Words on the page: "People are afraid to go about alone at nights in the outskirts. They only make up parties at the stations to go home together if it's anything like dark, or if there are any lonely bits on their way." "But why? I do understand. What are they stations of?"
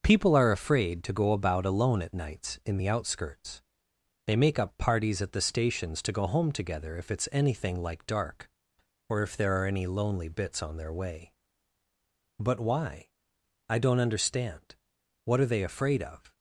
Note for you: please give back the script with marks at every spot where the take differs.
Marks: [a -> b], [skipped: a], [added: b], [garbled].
"People are afraid to go about alone at nights in the outskirts. They [skipped: only] make up parties at the stations to go home together if it's anything like dark, or if there are any lonely bits on their way." "But why? I [do -> don't] understand. What are they [stations -> afraid] of?"